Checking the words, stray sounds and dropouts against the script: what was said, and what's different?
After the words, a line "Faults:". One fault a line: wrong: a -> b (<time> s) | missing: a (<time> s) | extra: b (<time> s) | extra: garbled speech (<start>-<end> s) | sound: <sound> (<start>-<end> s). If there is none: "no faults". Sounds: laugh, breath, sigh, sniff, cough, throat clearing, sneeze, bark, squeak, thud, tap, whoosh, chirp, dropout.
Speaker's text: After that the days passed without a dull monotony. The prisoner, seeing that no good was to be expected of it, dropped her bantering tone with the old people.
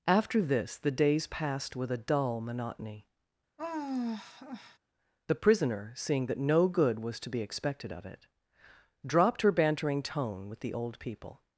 After this the days passed with a dull monotony. The prisoner, seeing that no good was to be expected of it, dropped her bantering tone with the old people.
Faults:
wrong: that -> this (0.4 s)
wrong: without -> with (1.8 s)
sound: sigh (3.6-4.8 s)